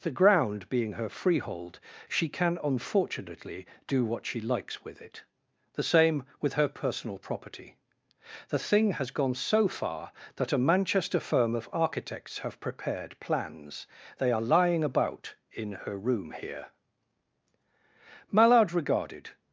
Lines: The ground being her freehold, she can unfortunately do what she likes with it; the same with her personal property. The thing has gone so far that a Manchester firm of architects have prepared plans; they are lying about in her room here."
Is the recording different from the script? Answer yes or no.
yes